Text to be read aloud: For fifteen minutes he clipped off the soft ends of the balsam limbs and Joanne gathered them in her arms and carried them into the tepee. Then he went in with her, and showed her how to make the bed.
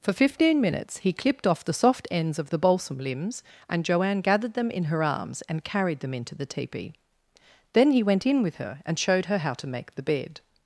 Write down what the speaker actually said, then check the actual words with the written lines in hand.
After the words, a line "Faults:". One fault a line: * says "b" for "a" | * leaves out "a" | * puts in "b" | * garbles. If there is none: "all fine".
For fifteen minutes he clipped off the soft ends of the balsam limbs and Joanne gathered them in her arms and carried them into the tepee. Then he went in with her, and showed her how to make the bed.
Faults:
all fine